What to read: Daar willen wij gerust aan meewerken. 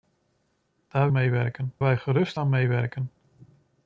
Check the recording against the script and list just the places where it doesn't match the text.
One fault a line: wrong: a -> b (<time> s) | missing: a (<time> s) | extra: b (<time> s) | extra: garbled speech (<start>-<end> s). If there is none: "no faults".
wrong: willen -> meewerken (1.1 s)